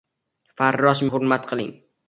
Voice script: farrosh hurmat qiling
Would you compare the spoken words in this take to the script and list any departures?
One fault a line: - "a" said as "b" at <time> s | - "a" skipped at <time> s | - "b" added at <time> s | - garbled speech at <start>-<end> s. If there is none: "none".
none